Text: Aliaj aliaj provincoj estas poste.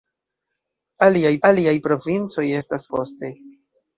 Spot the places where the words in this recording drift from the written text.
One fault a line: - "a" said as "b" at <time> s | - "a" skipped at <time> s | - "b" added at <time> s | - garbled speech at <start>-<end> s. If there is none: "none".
none